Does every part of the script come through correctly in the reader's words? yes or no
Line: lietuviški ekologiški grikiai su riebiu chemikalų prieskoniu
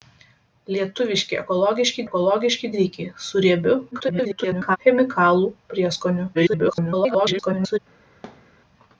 no